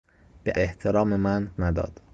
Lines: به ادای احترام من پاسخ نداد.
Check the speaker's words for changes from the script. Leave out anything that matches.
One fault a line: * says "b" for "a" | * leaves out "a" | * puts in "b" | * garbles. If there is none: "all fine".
* leaves out "ادای"
* leaves out "پاسخ"